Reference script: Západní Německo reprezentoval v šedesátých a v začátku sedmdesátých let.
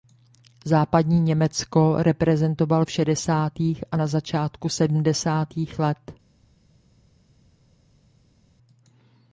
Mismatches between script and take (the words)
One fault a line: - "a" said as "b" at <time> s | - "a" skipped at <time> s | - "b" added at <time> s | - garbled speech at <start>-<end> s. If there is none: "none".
- "v" said as "na" at 3.9 s